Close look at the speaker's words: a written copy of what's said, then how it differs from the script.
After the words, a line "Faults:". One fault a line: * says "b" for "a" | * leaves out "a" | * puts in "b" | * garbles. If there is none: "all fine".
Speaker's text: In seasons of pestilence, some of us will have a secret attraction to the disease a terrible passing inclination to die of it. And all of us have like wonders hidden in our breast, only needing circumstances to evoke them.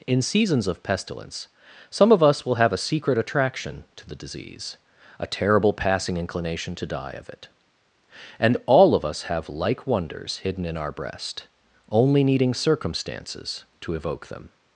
In seasons of pestilence, some of us will have a secret attraction to the disease a terrible passing inclination to die of it. And all of us have like wonders hidden in our breast, only needing circumstances to evoke them.
Faults:
all fine